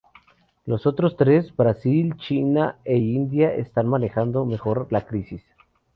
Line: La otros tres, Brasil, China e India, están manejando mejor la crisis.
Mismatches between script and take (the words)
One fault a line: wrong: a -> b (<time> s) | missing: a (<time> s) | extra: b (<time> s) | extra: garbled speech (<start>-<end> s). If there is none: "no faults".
wrong: La -> Los (0.7 s)